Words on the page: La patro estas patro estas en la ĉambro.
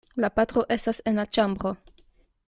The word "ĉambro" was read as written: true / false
true